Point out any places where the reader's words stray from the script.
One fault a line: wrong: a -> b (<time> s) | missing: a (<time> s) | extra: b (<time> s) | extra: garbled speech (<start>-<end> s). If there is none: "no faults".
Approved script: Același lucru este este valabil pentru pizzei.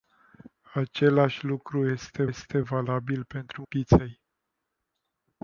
no faults